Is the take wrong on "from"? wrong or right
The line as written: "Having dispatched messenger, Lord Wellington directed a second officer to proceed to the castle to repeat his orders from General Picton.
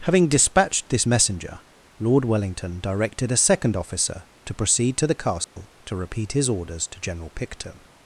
wrong